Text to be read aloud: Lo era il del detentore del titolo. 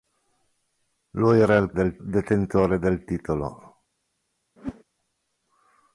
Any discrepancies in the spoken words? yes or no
no